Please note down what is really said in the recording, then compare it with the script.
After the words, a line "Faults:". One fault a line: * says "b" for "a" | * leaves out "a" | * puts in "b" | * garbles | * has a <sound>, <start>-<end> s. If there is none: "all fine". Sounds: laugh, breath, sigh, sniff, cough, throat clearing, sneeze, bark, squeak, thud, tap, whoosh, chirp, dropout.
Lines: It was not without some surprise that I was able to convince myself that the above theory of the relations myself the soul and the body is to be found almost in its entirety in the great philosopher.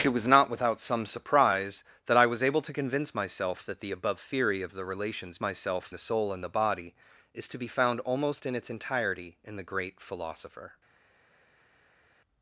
It was not without some surprise that I was able to convince myself that the above theory of the relations myself the soul and the body is to be found almost in its entirety in the great philosopher.
Faults:
all fine